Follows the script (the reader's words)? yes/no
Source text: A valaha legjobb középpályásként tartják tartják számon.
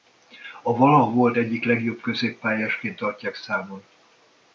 no